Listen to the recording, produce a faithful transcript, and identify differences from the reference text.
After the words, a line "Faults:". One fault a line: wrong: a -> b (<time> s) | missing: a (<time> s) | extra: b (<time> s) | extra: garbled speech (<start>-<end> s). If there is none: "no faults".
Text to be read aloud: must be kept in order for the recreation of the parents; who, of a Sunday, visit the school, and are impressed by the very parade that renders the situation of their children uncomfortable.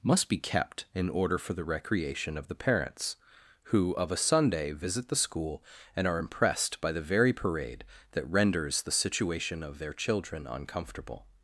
must be kept in order for the recreation of the parents; who, of a Sunday, visit the school, and are impressed by the very parade that renders the situation of their children uncomfortable.
Faults:
no faults